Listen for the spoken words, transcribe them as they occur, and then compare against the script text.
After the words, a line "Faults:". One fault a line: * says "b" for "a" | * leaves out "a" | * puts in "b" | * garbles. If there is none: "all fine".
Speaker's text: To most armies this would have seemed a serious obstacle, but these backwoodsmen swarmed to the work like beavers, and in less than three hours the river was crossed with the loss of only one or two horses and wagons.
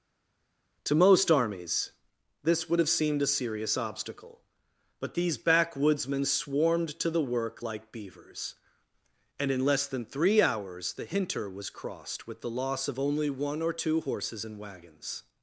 To most armies this would have seemed a serious obstacle, but these backwoodsmen swarmed to the work like beavers, and in less than three hours the hinter was crossed with the loss of only one or two horses and wagons.
Faults:
* says "hinter" for "river"